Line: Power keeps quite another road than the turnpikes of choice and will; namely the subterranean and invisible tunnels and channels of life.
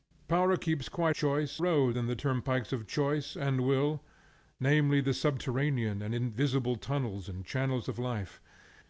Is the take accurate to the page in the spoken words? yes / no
no